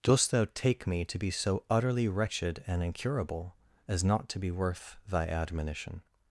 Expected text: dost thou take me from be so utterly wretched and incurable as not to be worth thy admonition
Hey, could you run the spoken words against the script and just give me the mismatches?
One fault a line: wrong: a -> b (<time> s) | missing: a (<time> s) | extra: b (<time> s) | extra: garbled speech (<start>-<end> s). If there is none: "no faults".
wrong: from -> to (1.1 s)